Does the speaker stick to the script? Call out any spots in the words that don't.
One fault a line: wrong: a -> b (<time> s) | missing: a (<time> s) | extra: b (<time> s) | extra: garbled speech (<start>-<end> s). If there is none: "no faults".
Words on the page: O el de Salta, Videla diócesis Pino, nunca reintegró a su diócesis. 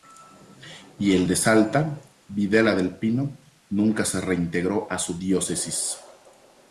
wrong: O -> Y (1.0 s)
wrong: diócesis -> del (2.7 s)
extra: se (4.1 s)